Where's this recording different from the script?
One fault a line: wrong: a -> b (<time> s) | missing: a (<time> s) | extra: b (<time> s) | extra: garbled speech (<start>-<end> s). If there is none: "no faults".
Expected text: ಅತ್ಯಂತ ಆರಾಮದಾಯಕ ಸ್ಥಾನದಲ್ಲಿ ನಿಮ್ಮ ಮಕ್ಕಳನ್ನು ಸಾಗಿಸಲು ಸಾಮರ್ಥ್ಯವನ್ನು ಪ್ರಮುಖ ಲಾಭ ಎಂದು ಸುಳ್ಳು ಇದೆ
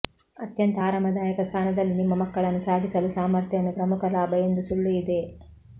no faults